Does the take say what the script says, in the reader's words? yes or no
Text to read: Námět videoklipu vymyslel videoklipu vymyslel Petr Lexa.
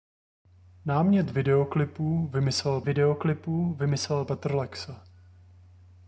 yes